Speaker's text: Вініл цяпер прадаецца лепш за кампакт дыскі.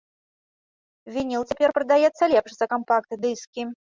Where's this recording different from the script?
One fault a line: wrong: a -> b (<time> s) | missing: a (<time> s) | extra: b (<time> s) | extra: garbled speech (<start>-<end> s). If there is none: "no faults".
no faults